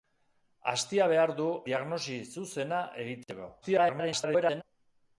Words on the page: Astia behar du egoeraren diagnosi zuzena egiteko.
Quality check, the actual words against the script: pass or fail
fail